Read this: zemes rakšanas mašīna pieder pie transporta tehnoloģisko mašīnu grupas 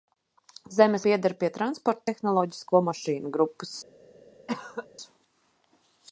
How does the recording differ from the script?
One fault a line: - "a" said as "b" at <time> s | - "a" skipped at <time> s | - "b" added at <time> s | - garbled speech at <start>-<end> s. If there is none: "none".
- "rakšanas mašīna" skipped at 1.0 s